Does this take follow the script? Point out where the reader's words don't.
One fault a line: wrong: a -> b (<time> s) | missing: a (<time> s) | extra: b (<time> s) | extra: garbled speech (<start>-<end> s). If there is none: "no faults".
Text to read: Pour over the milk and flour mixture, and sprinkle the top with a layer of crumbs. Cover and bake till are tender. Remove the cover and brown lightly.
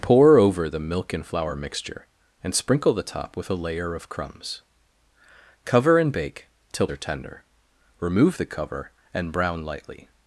no faults